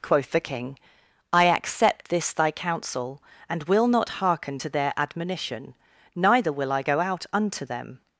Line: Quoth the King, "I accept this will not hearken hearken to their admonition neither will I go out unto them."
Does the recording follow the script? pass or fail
fail